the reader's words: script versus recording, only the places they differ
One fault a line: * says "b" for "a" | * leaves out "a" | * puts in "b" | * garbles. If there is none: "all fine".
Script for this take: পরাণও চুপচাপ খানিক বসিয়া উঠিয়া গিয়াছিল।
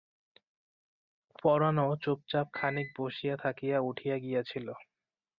* puts in "থাকিয়া"